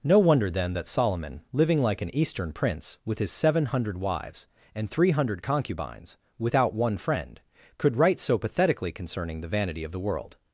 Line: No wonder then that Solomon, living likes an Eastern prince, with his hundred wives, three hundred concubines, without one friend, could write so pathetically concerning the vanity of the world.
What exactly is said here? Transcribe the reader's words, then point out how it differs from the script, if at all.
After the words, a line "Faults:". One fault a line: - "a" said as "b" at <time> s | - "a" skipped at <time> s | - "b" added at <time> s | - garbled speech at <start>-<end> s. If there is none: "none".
No wonder then that Solomon, living like an Eastern prince, with his seven hundred wives, and three hundred concubines, without one friend, could write so pathetically concerning the vanity of the world.
Faults:
- "likes" said as "like" at 1.8 s
- "seven" added at 3.3 s
- "and" added at 4.7 s